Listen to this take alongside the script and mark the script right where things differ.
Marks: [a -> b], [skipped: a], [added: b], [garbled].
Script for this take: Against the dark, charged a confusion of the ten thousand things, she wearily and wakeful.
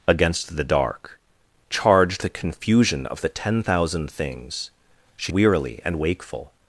Against the dark, charged a confusion of the ten thousand things, she wearily and wakeful.